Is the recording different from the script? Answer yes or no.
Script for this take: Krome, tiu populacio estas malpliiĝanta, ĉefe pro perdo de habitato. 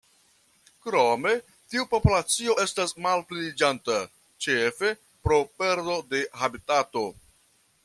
no